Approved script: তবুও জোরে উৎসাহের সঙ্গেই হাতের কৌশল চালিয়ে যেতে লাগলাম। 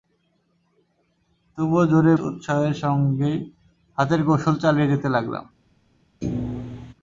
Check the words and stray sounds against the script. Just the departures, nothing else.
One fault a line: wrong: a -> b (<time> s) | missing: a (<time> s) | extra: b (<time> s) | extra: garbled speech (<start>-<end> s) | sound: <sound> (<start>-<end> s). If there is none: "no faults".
sound: thud (6.2-6.9 s)